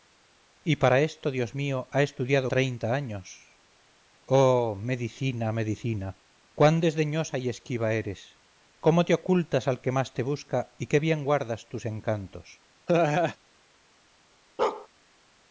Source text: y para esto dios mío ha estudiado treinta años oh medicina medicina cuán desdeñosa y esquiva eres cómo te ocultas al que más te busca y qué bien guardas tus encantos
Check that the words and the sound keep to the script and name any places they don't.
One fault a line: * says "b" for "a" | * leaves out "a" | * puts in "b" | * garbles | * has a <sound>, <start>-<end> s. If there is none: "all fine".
* has a laugh, 12.9-13.4 s
* has a bark, 14.6-14.9 s